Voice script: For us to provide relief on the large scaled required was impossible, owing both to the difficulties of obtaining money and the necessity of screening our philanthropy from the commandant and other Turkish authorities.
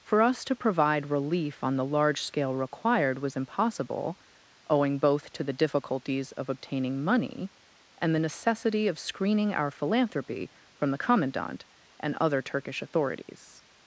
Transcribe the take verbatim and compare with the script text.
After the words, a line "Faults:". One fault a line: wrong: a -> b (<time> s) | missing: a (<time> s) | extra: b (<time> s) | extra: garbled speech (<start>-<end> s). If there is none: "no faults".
For us to provide relief on the large scale required was impossible, owing both to the difficulties of obtaining money and the necessity of screening our philanthropy from the commandant and other Turkish authorities.
Faults:
wrong: scaled -> scale (2.2 s)